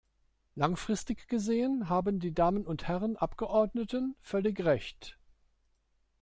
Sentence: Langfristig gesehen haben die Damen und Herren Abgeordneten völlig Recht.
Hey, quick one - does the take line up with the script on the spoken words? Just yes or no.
yes